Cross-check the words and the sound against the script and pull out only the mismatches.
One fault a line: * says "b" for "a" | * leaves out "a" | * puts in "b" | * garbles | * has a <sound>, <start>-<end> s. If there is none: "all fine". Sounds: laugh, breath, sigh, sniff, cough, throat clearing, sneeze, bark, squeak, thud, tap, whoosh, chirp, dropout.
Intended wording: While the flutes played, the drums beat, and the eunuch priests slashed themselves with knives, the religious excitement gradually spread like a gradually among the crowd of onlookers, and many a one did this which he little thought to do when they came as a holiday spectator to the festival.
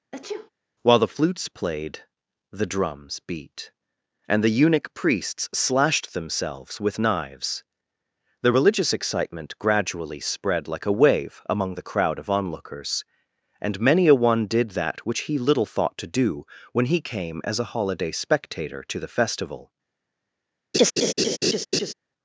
* has a sneeze, 0.1-0.5 s
* says "wave" for "gradually"
* says "that" for "this"
* says "he" for "they"
* has a laugh, 20.7-21.9 s